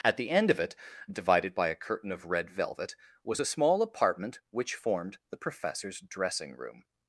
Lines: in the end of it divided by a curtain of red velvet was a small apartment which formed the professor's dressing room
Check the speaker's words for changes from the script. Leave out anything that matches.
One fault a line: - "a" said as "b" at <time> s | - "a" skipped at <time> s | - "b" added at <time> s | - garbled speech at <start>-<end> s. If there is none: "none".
- "in" said as "at" at 0.0 s